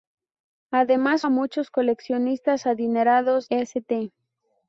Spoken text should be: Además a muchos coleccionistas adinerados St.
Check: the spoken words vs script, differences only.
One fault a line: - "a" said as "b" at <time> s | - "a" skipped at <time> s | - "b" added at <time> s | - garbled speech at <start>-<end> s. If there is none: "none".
none